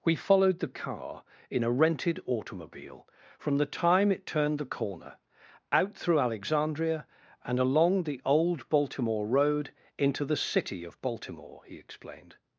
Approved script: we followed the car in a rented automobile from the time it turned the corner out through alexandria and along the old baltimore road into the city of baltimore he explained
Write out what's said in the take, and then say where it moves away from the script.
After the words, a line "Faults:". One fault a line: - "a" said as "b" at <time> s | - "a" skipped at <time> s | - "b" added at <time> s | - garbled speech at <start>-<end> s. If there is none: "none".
we followed the car in a rented automobile from the time it turned the corner out through alexandria and along the old baltimore road into the city of baltimore he explained
Faults:
none